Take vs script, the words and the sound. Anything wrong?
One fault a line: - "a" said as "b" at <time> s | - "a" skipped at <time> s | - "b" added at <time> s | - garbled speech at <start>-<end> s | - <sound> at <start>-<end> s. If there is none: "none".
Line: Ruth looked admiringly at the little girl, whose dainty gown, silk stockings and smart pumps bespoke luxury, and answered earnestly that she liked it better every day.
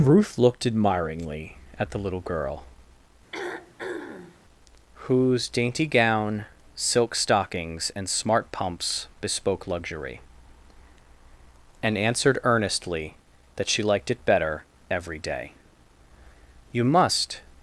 - throat clearing at 3.3-4.4 s
- "You must" added at 16.7 s